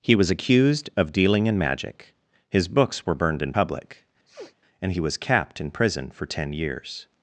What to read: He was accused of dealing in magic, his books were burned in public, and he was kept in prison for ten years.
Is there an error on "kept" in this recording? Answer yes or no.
yes